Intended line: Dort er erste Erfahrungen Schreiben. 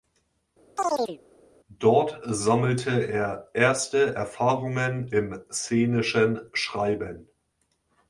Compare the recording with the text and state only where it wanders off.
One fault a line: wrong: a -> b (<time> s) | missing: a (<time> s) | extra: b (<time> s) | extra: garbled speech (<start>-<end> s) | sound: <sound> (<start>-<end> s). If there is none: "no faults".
sound: chirp (0.8-1.2 s)
extra: sammelte (2.2 s)
extra: im szenischen (5.1 s)